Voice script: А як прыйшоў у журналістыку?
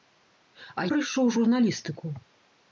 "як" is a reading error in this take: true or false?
true